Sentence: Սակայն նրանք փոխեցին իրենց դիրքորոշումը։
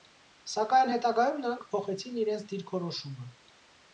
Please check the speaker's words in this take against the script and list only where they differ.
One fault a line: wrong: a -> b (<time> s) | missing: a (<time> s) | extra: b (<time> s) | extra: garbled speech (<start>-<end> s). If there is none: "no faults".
extra: հետագայում (0.9 s)